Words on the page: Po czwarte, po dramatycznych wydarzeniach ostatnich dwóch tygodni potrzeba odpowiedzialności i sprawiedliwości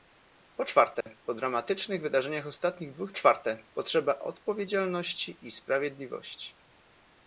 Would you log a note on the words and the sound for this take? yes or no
yes